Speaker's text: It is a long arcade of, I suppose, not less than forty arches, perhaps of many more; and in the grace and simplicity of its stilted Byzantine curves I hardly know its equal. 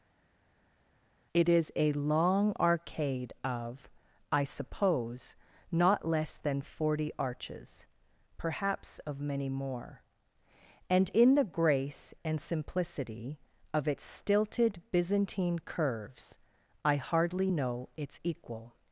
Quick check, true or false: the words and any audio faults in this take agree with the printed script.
true